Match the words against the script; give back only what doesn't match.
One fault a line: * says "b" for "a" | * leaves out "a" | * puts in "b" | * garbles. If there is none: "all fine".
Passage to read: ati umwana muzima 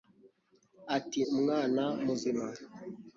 all fine